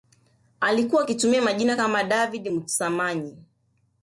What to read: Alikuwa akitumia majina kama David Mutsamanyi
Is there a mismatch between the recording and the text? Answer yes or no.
no